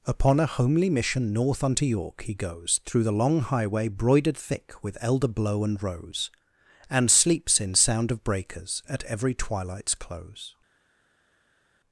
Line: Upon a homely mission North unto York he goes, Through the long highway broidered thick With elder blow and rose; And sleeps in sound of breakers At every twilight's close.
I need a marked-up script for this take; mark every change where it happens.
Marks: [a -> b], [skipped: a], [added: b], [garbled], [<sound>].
Upon a homely mission North unto York he goes, Through the long highway broidered thick With elder blow and rose; And sleeps in sound of breakers At every twilight's close.